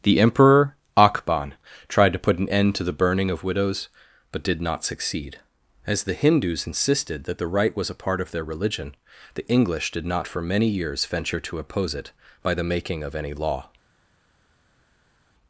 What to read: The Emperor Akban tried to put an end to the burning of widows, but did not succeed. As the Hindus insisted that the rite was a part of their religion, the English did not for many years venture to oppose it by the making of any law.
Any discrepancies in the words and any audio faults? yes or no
no